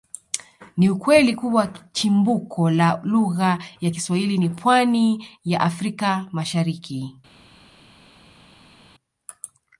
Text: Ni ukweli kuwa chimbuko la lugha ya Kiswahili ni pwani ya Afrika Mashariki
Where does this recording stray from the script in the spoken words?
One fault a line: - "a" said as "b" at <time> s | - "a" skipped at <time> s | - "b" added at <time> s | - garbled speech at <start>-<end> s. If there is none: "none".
none